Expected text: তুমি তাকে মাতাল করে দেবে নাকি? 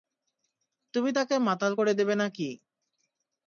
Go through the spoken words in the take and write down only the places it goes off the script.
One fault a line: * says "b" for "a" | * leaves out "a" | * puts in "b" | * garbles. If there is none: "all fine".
all fine